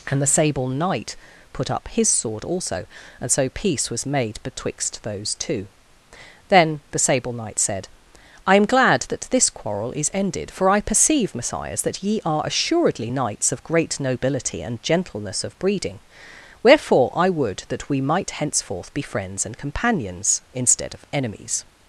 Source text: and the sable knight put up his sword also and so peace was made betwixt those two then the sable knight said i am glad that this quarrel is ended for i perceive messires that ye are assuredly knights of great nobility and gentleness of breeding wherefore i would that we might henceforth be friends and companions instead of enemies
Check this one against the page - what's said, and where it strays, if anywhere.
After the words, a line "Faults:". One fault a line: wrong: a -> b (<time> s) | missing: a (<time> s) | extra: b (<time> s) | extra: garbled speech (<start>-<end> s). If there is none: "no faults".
and the sable knight put up his sword also and so peace was made betwixt those two then the sable knight said i am glad that this quarrel is ended for i perceive messires that ye are assuredly knights of great nobility and gentleness of breeding wherefore i would that we might henceforth be friends and companions instead of enemies
Faults:
no faults